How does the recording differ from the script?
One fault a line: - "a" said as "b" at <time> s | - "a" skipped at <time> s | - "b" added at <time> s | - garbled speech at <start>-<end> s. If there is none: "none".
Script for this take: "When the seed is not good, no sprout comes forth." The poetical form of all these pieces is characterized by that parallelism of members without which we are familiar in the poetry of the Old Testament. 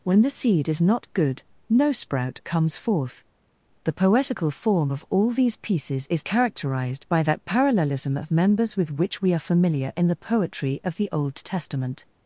- "without" said as "with" at 8.7 s